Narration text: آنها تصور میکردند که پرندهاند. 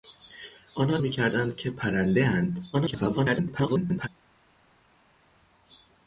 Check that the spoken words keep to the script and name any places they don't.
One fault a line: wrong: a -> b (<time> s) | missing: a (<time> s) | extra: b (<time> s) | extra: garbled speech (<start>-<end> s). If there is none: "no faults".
missing: تصور (1.0 s)
extra: garbled speech (2.7-4.1 s)